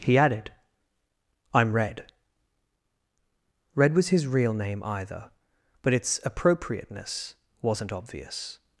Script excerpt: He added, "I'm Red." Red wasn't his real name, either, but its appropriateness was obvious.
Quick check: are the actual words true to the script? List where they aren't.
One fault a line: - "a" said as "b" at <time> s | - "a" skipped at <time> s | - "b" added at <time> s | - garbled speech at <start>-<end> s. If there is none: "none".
- "wasn't" said as "was" at 3.9 s
- "was" said as "wasn't" at 7.6 s